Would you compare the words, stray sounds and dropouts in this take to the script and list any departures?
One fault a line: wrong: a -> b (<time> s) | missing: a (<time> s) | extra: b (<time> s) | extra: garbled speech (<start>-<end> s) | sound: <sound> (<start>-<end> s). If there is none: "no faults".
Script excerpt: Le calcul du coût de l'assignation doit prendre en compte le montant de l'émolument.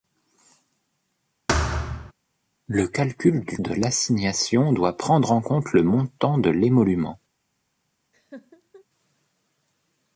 sound: thud (1.5-2.1 s)
missing: coût (3.6 s)
sound: laugh (8.1-8.8 s)